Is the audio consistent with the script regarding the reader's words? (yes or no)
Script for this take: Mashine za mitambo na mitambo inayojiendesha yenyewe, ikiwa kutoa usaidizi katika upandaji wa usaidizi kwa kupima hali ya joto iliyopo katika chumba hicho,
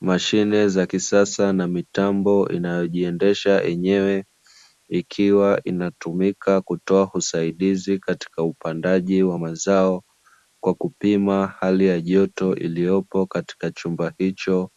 no